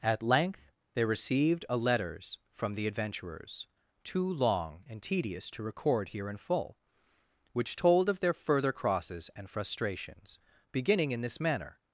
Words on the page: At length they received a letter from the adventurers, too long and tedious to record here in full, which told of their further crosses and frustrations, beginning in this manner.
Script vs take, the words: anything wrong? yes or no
yes